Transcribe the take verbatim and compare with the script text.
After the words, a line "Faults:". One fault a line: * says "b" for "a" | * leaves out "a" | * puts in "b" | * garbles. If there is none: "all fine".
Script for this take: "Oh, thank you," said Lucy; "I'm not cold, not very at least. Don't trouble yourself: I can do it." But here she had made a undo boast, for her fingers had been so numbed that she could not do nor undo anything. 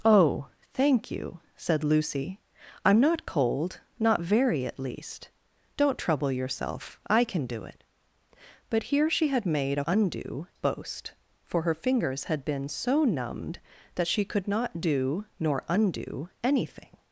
"Oh, thank you," said Lucy; "I'm not cold, not very at least. Don't trouble yourself: I can do it." But here she had made a undo boast, for her fingers had been so numbed that she could not do nor undo anything.
Faults:
all fine